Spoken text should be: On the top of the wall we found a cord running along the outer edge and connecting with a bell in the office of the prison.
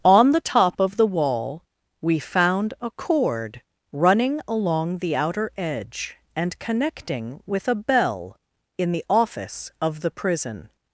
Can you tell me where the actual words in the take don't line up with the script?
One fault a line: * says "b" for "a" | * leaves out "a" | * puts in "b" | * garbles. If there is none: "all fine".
all fine